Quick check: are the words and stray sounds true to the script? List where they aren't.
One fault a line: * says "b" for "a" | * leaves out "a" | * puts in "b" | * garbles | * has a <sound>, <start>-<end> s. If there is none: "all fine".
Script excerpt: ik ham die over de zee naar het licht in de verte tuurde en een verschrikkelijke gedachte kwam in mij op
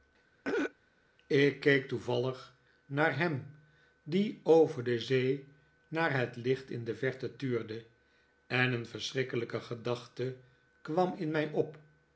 * has a throat clearing, 0.4-0.7 s
* puts in "keek toevallig naar"